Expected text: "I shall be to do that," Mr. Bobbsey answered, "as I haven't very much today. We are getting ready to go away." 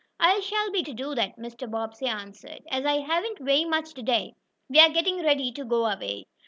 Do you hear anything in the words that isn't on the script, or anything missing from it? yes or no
no